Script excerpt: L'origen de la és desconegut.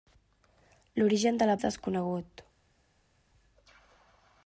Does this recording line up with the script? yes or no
yes